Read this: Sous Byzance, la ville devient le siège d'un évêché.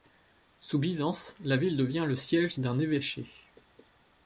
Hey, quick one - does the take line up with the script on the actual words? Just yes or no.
yes